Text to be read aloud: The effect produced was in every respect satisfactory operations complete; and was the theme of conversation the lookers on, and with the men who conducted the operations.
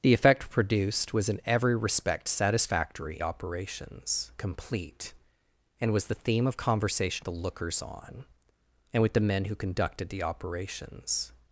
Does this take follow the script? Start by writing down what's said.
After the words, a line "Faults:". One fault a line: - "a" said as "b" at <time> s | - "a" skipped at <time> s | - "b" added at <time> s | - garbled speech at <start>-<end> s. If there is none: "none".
The effect produced was in every respect satisfactory operations complete; and was the theme of conversation the lookers on, and with the men who conducted the operations.
Faults:
none